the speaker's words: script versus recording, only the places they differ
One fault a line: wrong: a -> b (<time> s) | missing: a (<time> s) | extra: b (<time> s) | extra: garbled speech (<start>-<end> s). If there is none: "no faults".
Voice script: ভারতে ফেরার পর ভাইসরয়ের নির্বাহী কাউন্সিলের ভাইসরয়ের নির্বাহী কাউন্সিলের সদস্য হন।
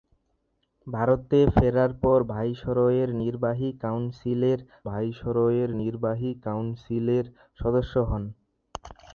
no faults